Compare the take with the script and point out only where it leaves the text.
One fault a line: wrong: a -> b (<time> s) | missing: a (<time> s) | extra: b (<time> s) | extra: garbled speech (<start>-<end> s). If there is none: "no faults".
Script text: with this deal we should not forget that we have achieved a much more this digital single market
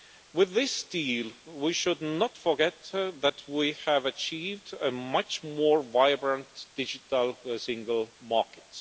wrong: this -> vibrant (5.8 s)